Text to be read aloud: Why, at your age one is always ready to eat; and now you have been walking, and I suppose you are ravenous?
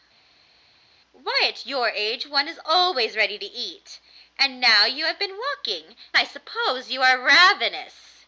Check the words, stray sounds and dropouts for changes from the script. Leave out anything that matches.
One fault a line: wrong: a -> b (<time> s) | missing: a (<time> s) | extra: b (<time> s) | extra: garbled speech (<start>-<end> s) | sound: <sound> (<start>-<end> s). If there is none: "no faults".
missing: and (6.0 s)